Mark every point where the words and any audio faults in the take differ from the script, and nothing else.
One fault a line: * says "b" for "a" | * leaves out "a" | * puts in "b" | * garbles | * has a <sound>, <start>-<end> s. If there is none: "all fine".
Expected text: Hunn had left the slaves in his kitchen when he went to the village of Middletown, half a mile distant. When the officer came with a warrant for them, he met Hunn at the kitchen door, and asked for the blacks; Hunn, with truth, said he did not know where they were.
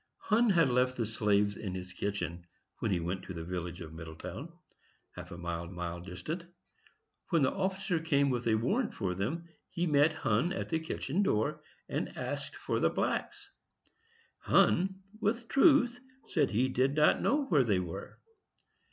* puts in "mile"